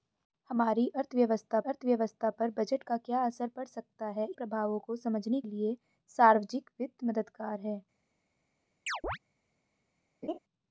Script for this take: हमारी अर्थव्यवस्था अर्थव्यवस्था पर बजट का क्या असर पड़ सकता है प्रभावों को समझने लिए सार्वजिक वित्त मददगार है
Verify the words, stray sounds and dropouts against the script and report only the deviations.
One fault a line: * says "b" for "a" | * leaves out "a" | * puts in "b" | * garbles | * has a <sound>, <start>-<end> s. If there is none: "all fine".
* has a chirp, 8.9-9.2 s
* has a laugh, 10.2-10.4 s